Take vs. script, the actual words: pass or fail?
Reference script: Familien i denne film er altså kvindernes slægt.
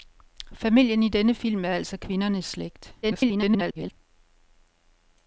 fail